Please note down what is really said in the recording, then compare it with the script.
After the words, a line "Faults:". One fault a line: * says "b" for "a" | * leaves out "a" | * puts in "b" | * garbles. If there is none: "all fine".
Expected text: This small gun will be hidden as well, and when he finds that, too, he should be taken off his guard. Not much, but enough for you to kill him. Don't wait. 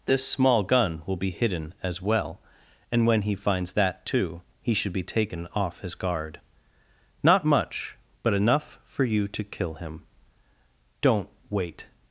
This small gun will be hidden as well, and when he finds that, too, he should be taken off his guard. Not much, but enough for you to kill him. Don't wait.
Faults:
all fine